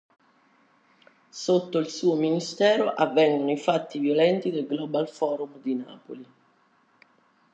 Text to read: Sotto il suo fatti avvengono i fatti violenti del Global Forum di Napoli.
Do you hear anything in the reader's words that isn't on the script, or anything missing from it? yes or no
yes